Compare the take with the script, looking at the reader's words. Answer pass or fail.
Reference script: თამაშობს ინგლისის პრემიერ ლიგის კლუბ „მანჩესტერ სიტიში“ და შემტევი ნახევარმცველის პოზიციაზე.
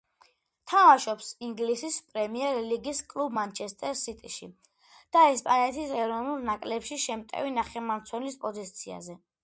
fail